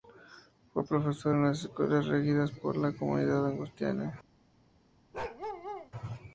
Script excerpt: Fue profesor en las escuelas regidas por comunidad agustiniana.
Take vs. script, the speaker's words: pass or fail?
fail